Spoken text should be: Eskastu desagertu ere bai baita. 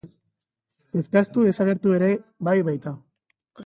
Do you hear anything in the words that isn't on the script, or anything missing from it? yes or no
no